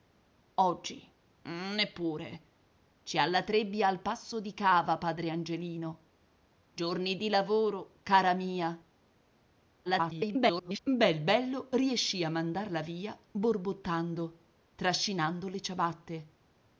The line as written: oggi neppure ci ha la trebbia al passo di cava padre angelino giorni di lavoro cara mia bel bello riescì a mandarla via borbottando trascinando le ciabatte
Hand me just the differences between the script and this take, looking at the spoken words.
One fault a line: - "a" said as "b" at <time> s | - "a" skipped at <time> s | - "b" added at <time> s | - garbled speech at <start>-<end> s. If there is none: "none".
- garbled speech at 9.8-10.8 s